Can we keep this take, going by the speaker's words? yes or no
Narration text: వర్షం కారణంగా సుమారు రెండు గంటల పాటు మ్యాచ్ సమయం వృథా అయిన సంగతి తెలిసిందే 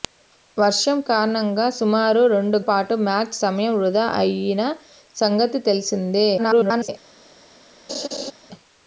no